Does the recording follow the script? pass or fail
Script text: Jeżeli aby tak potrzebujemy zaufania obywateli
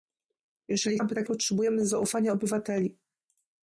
pass